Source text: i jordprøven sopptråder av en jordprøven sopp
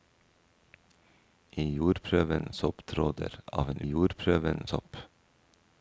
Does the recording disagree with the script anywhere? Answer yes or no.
no